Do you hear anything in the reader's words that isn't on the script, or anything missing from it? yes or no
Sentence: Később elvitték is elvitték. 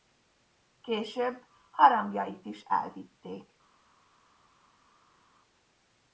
yes